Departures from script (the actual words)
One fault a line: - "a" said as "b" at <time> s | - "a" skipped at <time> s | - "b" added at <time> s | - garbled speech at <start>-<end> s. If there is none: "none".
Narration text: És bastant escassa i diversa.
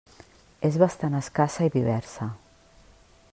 none